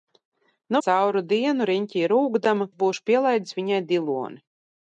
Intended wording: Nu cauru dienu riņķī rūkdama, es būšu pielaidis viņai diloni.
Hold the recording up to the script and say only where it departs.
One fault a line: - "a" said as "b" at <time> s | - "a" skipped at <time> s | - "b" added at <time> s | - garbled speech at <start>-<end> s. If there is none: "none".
none